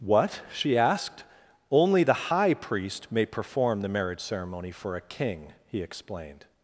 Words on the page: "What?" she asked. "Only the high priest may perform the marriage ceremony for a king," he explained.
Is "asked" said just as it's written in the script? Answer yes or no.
yes